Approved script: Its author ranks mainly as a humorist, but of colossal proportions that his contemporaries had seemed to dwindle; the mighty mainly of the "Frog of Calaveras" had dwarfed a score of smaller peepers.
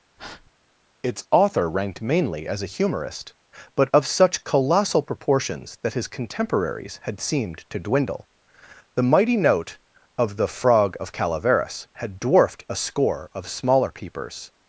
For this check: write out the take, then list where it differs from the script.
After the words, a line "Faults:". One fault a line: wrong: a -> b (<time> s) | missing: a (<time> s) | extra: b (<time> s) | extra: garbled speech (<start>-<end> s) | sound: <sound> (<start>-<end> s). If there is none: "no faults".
Its author ranked mainly as a humorist, but of such colossal proportions that his contemporaries had seemed to dwindle; the mighty note of the "Frog of Calaveras" had dwarfed a score of smaller peepers.
Faults:
sound: breath (0.2-0.5 s)
wrong: ranks -> ranked (1.7 s)
extra: such (4.1 s)
wrong: mainly -> note (9.3 s)